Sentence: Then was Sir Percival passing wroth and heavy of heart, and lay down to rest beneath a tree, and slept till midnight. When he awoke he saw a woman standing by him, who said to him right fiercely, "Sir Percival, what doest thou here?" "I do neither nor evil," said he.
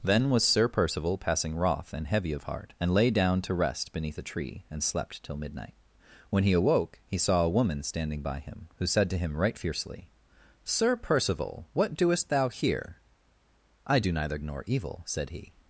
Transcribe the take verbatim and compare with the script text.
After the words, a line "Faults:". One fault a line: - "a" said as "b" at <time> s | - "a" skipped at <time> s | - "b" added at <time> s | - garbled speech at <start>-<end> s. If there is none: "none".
Then was Sir Percival passing wroth and heavy of heart, and lay down to rest beneath a tree, and slept till midnight. When he awoke he saw a woman standing by him, who said to him right fiercely, "Sir Percival, what doest thou here?" "I do neither nor evil," said he.
Faults:
none